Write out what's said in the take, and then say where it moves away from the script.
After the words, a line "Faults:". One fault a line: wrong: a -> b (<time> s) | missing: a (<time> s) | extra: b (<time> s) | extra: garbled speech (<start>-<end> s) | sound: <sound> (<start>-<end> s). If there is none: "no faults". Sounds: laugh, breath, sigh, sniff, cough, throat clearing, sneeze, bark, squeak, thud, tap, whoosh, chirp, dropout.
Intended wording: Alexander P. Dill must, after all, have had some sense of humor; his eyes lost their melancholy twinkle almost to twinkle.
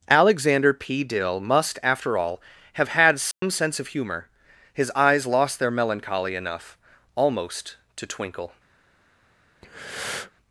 Alexander P. Dill must, after all, have had some sense of humor; his eyes lost their melancholy enough almost to twinkle.
Faults:
sound: dropout (3.3-3.4 s)
wrong: twinkle -> enough (6.4 s)
sound: breath (9.6-10.3 s)